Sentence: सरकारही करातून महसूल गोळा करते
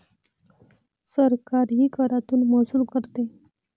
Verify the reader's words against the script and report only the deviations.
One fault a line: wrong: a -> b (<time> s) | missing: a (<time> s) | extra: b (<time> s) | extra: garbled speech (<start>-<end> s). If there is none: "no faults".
missing: गोळा (2.8 s)